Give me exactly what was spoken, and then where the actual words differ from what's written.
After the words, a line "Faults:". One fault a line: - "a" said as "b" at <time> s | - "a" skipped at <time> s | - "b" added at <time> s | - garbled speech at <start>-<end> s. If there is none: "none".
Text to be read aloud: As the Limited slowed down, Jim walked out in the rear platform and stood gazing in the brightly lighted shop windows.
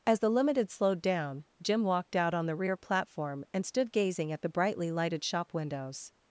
As the Limited slowed down, Jim walked out on the rear platform and stood gazing at the brightly lighted shop windows.
Faults:
- "in" said as "on" at 2.3 s
- "in" said as "at" at 4.3 s